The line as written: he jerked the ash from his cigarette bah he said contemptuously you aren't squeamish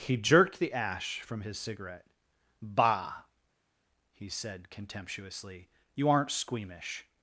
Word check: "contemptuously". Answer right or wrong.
right